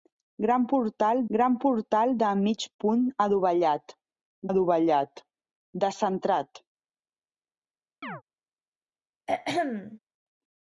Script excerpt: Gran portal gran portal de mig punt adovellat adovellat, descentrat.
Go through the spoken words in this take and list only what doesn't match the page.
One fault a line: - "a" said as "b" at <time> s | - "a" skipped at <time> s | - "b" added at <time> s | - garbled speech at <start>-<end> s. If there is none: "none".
none